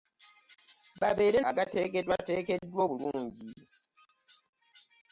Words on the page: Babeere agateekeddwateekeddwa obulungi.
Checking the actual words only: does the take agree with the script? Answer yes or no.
yes